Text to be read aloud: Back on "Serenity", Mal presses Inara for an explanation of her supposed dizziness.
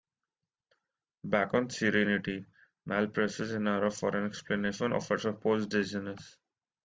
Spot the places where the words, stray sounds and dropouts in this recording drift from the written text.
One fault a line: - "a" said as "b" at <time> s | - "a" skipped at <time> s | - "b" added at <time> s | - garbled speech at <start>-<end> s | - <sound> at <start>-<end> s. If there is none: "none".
none